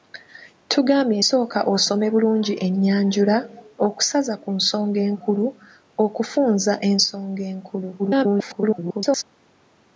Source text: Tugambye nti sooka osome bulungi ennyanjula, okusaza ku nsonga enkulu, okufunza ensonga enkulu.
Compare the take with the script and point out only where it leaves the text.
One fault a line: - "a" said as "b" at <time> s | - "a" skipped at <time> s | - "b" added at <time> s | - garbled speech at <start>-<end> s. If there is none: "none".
- "nti" skipped at 1.2 s
- garbled speech at 8.0-9.2 s